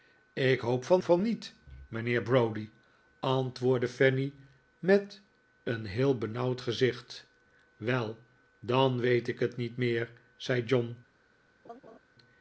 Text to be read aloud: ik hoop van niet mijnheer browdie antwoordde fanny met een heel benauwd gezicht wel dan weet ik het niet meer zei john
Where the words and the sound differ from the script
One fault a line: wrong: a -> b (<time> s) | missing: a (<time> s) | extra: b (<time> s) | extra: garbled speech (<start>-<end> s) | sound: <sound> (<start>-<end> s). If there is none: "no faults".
extra: van (1.0 s)
sound: laugh (11.6-12.0 s)